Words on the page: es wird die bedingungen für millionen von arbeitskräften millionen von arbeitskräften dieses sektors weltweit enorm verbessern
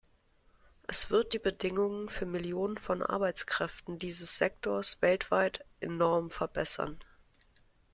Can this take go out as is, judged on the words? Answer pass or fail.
fail